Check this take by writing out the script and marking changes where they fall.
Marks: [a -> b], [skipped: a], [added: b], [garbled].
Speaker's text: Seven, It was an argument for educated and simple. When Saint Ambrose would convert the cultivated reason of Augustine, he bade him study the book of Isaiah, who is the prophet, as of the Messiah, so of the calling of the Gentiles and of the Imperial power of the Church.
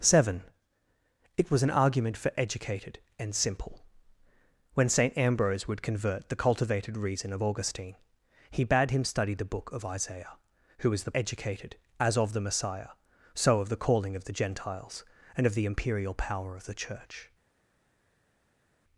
Seven, It was an argument for educated and simple. When Saint Ambrose would convert the cultivated reason of Augustine, he bade him study the book of Isaiah, who is the [prophet, -> educated] as of the Messiah, so of the calling of the Gentiles and of the Imperial power of the Church.